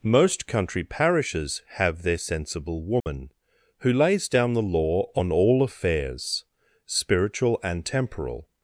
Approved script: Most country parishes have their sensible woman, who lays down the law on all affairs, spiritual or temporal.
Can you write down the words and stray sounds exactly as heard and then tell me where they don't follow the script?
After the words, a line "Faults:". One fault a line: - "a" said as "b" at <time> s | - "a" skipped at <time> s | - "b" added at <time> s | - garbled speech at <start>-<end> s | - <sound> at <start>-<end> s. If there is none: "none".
Most country parishes have their sensible woman, who lays down the law on all affairs, spiritual and temporal.
Faults:
- dropout at 3.0-3.1 s
- "or" said as "and" at 7.6 s